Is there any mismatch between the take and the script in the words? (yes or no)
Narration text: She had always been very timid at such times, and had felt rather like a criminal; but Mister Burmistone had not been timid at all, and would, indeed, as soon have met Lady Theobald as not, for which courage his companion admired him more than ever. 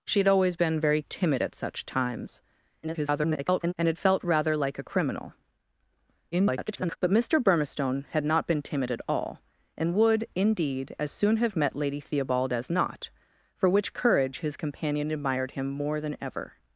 yes